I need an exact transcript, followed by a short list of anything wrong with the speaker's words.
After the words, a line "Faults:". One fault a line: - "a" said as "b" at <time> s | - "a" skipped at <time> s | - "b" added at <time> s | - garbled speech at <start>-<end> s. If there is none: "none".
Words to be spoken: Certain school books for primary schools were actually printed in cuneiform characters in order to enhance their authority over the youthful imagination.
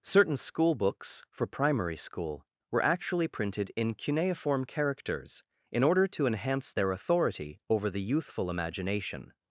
Certain school books for primary school were actually printed in cuneiform characters in order to enhance their authority over the youthful imagination.
Faults:
- "schools" said as "school" at 2.0 s